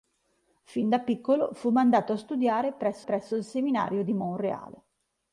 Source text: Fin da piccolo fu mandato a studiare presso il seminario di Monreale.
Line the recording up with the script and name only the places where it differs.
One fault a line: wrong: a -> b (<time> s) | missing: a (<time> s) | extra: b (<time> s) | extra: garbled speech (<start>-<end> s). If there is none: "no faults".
extra: presso (3.0 s)